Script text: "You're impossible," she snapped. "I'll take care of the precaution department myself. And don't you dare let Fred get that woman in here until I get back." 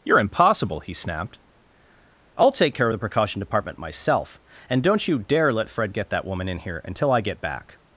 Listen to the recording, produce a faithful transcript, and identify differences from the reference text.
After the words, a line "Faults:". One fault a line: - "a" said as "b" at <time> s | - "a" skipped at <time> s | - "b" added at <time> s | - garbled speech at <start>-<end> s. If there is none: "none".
"You're impossible," he snapped. "I'll take care of the precaution department myself. And don't you dare let Fred get that woman in here until I get back."
Faults:
- "she" said as "he" at 0.8 s